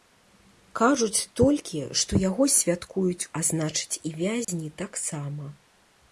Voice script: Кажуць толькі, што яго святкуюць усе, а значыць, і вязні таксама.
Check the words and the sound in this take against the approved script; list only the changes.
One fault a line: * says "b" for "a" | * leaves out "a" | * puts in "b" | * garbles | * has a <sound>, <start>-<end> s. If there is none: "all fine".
* leaves out "усе"
* has a dropout, 4.4-4.5 s